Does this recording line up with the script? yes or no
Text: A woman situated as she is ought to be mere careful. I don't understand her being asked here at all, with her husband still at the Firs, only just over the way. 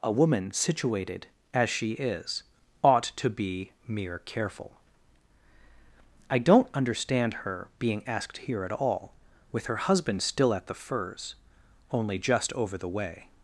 yes